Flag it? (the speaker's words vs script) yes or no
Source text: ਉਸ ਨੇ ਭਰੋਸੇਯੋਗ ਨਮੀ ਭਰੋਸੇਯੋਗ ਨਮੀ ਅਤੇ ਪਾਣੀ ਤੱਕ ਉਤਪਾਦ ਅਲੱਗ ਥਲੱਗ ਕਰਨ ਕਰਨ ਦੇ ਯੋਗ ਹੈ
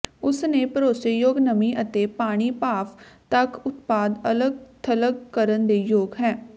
yes